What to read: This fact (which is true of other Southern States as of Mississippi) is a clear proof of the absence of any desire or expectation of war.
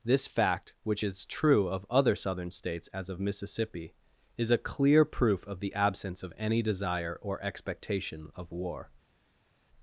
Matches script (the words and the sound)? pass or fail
pass